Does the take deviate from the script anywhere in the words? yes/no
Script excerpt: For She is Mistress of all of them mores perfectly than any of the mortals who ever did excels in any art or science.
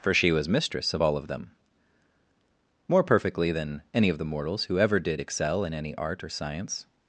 yes